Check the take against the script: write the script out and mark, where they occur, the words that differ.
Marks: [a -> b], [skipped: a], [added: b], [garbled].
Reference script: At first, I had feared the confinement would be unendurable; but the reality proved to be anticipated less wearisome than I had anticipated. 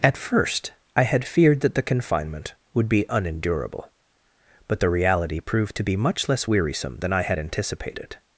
At first, I had feared [added: that] the confinement would be unendurable; but the reality proved to be [anticipated -> much] less wearisome than I had anticipated.